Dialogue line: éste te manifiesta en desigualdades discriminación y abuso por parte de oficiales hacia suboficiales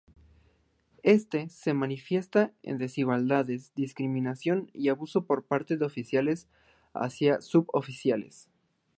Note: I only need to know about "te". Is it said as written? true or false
false